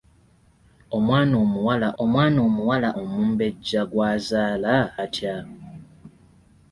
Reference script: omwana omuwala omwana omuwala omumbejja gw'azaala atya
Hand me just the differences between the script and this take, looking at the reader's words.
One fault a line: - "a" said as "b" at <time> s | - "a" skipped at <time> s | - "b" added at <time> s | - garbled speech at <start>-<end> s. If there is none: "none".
none